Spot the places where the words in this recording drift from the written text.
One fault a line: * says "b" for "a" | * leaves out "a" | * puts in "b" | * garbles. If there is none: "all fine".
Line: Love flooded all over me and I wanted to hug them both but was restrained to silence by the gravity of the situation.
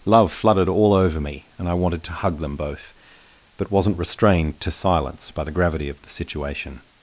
* says "wasn't" for "was"